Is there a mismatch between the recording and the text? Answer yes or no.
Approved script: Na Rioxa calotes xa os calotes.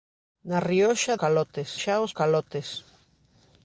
no